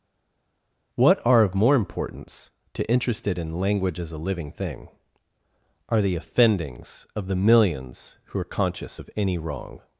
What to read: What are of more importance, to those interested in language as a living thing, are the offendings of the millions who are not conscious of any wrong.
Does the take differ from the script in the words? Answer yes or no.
yes